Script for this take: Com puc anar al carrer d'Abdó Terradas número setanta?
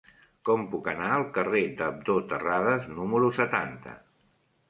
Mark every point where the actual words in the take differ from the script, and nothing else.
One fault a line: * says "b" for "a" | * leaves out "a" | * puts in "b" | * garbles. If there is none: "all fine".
all fine